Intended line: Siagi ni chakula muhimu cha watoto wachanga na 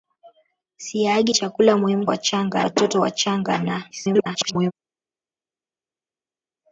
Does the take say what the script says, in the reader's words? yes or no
no